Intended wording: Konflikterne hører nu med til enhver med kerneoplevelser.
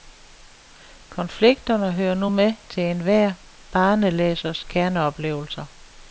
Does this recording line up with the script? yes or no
no